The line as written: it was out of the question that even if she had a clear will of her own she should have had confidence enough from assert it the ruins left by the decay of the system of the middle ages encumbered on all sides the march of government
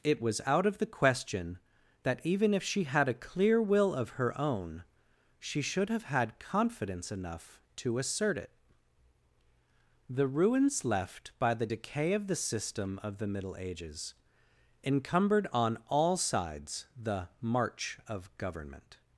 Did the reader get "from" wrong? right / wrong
wrong